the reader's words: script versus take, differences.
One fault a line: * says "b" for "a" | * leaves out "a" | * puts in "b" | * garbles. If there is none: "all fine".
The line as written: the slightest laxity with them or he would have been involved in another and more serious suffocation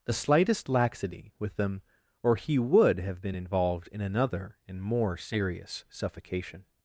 all fine